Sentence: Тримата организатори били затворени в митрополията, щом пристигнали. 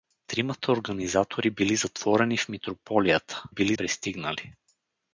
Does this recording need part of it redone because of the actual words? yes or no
yes